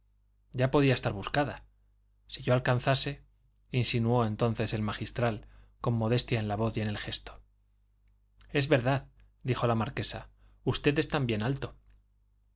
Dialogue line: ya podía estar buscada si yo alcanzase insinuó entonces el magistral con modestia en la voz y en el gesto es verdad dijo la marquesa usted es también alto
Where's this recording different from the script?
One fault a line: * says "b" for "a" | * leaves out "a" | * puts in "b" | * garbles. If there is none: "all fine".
all fine